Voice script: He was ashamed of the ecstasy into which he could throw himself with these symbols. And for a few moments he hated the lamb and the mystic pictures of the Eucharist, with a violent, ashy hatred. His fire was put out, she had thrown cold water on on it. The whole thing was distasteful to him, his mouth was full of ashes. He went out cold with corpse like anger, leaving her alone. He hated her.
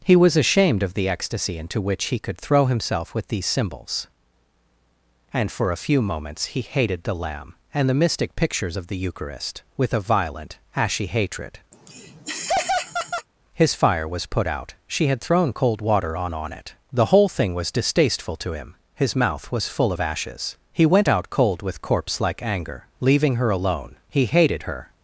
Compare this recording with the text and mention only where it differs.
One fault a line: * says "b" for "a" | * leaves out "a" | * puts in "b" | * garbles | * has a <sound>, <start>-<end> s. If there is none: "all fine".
* has a laugh, 11.7-13.3 s